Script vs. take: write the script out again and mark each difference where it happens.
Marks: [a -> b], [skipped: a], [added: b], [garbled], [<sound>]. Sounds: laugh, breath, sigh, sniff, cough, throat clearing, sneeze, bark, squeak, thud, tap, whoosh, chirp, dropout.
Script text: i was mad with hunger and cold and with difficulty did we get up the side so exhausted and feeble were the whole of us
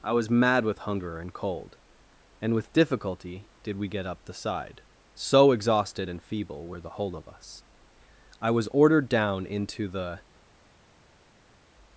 i was mad with hunger and cold and with difficulty did we get up the side so exhausted and feeble were the whole of us [added: i was ordered down into the]